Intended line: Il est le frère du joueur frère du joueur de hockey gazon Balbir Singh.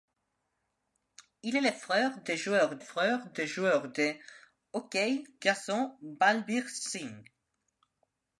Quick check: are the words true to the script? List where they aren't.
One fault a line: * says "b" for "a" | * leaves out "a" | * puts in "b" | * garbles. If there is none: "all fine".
all fine